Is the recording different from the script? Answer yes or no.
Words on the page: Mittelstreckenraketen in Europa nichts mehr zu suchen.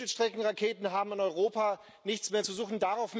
yes